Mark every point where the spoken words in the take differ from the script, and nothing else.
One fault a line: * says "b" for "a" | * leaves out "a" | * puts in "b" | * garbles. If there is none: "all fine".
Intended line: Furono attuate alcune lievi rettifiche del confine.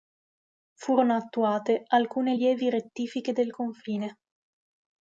all fine